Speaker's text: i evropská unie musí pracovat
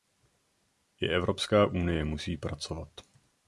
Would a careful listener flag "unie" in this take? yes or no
no